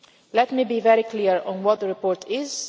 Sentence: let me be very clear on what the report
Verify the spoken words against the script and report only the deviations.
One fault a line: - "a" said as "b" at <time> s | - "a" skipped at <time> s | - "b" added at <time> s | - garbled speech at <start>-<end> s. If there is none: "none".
none